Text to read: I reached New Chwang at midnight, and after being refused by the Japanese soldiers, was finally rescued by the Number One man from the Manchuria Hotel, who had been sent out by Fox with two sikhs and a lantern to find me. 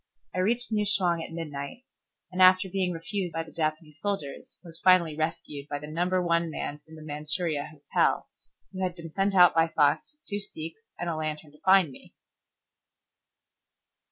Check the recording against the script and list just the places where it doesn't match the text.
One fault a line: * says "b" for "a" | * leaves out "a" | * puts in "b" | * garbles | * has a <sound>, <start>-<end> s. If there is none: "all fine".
all fine